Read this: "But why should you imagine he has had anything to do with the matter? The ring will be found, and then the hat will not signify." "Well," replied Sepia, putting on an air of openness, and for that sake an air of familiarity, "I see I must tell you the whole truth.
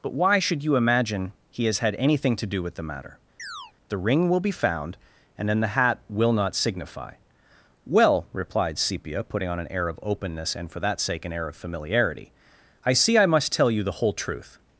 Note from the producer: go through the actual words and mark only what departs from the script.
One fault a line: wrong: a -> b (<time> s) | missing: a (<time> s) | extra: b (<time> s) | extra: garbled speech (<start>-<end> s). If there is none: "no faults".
no faults